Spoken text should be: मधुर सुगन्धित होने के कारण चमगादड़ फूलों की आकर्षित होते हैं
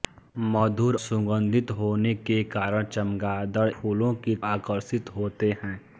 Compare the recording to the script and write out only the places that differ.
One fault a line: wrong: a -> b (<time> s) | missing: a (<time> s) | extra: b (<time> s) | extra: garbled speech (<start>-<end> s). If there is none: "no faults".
no faults